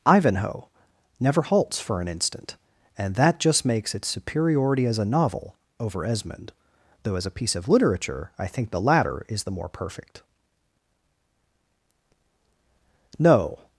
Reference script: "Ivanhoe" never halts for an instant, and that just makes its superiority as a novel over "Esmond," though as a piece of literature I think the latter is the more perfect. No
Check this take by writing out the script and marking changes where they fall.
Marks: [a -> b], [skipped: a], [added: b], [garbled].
"Ivanhoe" never halts for an instant, and that just makes its superiority as a novel over "Esmond," though as a piece of literature I think the latter is the more perfect. No